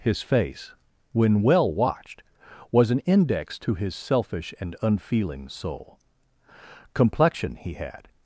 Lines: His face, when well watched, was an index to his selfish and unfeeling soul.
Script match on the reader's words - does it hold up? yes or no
no